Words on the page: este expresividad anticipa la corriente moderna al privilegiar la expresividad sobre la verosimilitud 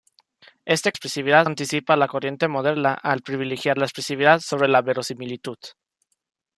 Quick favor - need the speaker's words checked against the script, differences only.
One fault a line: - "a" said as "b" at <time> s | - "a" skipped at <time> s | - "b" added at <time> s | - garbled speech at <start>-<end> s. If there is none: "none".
none